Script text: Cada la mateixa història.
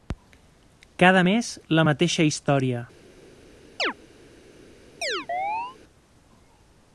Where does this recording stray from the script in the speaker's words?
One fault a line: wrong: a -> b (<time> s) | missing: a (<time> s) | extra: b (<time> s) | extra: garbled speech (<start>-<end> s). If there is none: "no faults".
extra: mes (1.3 s)